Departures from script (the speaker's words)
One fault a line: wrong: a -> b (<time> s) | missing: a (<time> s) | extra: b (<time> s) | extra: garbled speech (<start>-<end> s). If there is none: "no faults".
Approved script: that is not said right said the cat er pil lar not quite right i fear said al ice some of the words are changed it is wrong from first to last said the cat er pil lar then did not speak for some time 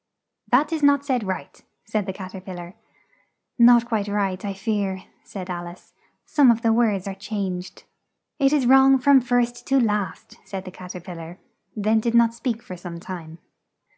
no faults